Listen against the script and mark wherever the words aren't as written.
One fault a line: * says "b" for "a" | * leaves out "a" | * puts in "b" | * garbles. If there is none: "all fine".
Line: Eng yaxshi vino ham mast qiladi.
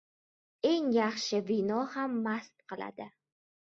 all fine